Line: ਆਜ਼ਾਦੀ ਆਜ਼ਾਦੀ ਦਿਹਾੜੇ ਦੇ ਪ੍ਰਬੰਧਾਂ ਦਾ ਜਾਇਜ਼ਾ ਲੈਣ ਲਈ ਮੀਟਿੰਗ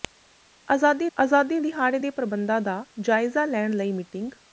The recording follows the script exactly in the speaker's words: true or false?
true